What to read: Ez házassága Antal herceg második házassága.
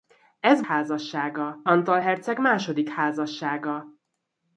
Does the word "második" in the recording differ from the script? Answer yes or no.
no